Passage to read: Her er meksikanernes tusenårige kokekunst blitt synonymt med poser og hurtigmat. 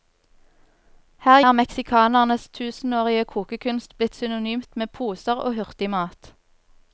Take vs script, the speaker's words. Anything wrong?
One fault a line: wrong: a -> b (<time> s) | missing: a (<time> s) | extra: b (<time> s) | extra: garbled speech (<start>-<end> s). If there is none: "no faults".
no faults